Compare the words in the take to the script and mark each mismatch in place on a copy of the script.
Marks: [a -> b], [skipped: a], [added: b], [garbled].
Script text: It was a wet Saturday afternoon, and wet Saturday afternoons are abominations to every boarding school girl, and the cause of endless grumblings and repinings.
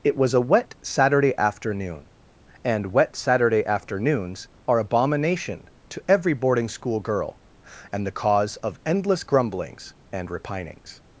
It was a wet Saturday afternoon, and wet Saturday afternoons are [abominations -> abomination] to every boarding school girl, and the cause of endless grumblings and repinings.